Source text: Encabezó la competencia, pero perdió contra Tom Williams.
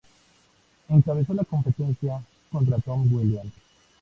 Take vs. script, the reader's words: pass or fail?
fail